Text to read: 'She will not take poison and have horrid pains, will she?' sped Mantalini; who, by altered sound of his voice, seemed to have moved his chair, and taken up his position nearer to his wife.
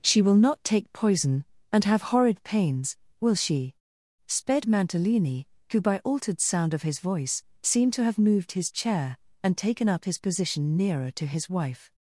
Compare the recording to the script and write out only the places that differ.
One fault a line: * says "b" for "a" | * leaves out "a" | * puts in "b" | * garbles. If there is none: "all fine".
all fine